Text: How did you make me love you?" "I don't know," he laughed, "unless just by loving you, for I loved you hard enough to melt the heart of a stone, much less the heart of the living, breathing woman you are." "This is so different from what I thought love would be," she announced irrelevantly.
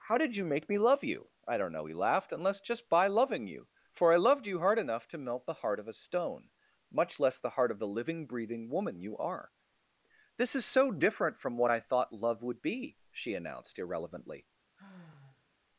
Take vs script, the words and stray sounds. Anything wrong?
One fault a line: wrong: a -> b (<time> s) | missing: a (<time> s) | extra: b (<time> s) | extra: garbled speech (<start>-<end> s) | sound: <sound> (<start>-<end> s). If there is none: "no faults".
sound: sigh (14.8-15.5 s)